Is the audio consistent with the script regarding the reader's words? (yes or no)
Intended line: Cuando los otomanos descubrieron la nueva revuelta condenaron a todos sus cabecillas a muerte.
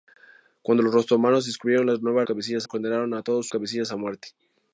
no